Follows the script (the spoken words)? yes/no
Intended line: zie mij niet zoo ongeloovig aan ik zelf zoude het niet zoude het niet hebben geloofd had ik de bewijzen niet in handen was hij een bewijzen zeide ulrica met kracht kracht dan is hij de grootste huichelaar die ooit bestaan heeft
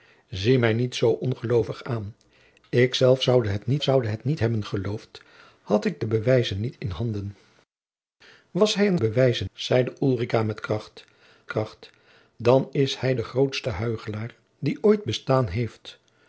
yes